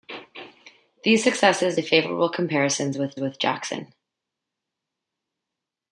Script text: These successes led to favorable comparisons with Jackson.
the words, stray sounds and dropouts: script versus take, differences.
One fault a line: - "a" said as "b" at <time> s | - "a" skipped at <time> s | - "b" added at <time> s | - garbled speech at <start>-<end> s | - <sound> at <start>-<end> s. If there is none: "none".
- "led" skipped at 1.8 s
- "with" added at 3.2 s